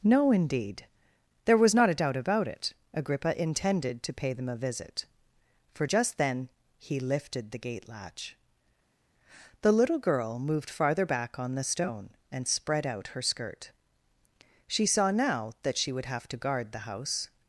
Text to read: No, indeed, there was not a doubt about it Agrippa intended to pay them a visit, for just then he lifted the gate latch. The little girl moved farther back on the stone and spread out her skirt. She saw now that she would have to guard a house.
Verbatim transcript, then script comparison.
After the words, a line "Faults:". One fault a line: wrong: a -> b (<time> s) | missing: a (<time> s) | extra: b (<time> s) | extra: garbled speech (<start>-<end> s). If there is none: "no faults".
No, indeed, there was not a doubt about it Agrippa intended to pay them a visit, for just then he lifted the gate latch. The little girl moved farther back on the stone and spread out her skirt. She saw now that she would have to guard the house.
Faults:
wrong: a -> the (16.7 s)